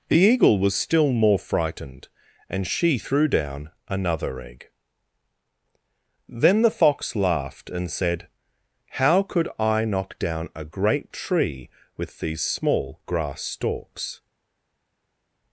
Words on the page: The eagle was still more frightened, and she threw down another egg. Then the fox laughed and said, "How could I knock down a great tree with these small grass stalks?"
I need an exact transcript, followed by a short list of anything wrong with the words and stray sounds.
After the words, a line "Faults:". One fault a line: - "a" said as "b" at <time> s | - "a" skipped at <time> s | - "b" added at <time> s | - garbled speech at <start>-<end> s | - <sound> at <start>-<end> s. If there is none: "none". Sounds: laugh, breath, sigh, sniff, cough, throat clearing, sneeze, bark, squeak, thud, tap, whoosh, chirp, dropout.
The eagle was still more frightened, and she threw down another egg. Then the fox laughed and said, "How could I knock down a great tree with these small grass stalks?"
Faults:
none